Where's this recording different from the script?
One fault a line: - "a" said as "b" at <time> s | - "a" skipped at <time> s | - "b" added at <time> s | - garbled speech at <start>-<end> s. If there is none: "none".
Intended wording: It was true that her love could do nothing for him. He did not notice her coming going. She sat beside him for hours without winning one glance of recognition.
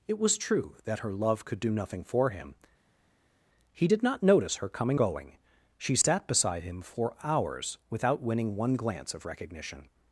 none